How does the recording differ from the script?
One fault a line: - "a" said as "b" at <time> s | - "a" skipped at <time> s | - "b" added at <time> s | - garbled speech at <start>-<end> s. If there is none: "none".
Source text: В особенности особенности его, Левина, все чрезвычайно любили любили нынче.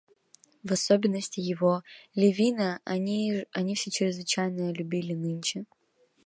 - "особенности" skipped at 1.4 s
- "они" added at 2.8 s
- "любили" skipped at 5.1 s